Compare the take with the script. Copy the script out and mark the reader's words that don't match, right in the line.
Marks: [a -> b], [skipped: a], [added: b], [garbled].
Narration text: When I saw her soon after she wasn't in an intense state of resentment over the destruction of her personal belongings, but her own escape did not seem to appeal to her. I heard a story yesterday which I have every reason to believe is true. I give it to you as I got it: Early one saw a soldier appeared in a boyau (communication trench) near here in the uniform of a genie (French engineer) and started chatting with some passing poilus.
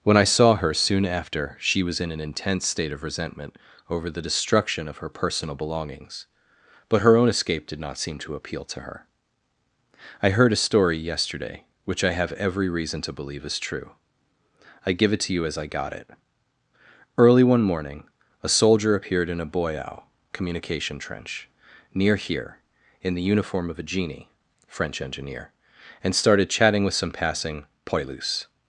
When I saw her soon after she [wasn't -> was] in an intense state of resentment over the destruction of her personal belongings, but her own escape did not seem to appeal to her. I heard a story yesterday which I have every reason to believe is true. I give it to you as I got it: Early one [saw -> morning] a soldier appeared in a boyau (communication trench) near here in the uniform of a genie (French engineer) and started chatting with some passing poilus.